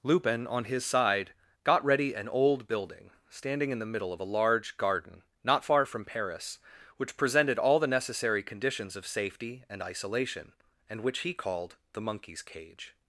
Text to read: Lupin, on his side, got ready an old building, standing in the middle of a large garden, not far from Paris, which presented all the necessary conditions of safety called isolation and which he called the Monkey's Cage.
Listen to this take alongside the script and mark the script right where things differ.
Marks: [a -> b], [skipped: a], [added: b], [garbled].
Lupin, on his side, got ready an old building, standing in the middle of a large garden, not far from Paris, which presented all the necessary conditions of safety [called -> and] isolation and which he called the Monkey's Cage.